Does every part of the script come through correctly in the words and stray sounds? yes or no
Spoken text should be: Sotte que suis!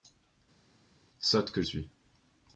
yes